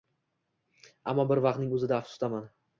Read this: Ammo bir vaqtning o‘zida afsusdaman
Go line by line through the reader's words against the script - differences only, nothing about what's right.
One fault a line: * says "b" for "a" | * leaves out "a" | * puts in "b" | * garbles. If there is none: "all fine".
all fine